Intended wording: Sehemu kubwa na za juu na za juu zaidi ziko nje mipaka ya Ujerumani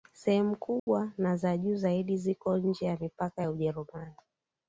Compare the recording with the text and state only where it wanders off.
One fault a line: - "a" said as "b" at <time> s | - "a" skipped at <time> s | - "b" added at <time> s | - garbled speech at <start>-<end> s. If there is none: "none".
- "na za juu" skipped at 1.8 s
- "ya" added at 2.9 s